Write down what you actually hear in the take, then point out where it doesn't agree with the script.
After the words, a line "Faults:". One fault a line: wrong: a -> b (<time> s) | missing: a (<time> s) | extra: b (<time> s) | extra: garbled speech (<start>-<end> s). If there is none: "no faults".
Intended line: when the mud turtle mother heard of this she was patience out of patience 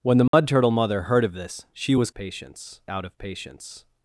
when the mud turtle mother heard of this she was patience out of patience
Faults:
no faults